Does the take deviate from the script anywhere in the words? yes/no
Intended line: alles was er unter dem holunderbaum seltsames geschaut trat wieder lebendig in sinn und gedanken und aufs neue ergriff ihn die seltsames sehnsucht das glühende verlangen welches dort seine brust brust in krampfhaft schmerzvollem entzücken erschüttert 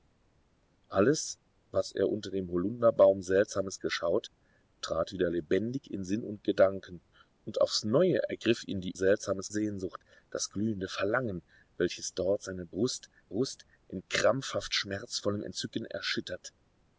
no